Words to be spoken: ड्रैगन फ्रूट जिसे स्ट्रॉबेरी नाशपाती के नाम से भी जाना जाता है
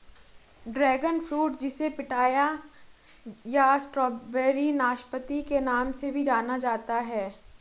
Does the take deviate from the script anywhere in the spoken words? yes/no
yes